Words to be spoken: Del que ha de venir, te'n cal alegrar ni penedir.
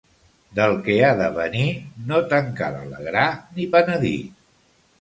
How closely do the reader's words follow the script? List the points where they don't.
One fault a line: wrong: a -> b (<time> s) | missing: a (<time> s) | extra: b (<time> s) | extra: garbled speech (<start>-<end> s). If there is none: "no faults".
extra: no (2.1 s)